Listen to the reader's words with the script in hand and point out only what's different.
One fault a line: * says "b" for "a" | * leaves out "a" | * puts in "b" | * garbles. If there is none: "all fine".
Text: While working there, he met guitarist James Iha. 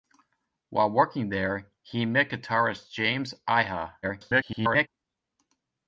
* garbles